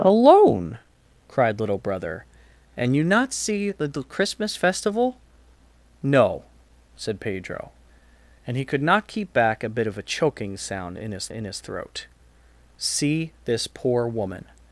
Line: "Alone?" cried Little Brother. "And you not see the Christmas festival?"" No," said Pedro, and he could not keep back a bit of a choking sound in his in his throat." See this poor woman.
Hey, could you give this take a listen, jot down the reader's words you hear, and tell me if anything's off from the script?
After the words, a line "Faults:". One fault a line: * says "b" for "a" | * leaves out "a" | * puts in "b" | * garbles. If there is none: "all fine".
"Alone?" cried Little Brother. "And you not see the Christmas festival?"" No," said Pedro, and he could not keep back a bit of a choking sound in his in his throat." See this poor woman.
Faults:
all fine